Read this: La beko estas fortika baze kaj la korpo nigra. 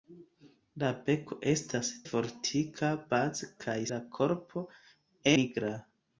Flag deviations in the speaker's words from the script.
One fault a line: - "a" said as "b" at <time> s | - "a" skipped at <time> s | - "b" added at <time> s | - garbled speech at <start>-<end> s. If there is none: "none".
none